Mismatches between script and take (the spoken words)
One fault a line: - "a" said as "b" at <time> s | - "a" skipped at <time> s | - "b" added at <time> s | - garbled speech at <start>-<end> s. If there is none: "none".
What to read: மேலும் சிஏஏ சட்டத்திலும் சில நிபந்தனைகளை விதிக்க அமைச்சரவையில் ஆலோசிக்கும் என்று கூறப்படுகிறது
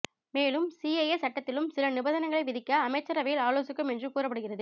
none